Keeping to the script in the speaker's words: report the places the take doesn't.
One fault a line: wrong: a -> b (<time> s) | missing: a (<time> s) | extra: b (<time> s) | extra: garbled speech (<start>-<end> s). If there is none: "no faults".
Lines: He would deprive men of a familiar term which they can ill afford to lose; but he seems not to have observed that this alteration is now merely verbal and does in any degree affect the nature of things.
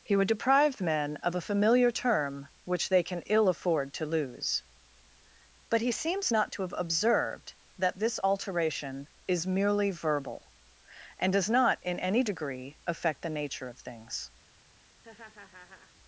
missing: now (9.5 s)
extra: not (11.5 s)